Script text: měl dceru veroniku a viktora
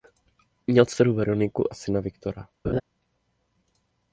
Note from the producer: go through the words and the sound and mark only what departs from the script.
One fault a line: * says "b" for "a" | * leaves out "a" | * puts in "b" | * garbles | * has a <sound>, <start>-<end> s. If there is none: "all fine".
* puts in "syna"
* has a laugh, 2.6-2.8 s